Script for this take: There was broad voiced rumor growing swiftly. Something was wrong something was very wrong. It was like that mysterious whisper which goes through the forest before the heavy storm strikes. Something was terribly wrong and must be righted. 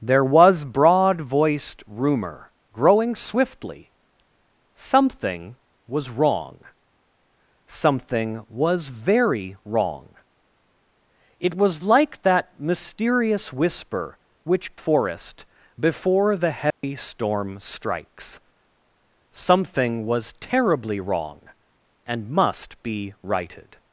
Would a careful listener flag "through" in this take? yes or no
yes